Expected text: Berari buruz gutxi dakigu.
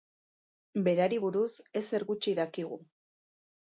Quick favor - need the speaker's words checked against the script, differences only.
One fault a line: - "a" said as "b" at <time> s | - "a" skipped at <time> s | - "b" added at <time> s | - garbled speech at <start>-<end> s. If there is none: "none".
- "ezer" added at 1.8 s